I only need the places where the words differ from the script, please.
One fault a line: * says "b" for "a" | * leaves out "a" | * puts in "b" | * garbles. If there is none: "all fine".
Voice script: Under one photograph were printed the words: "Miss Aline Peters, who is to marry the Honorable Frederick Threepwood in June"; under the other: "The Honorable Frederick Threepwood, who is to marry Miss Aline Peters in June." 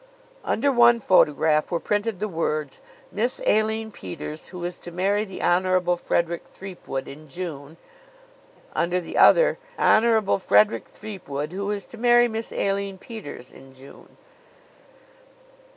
* leaves out "The"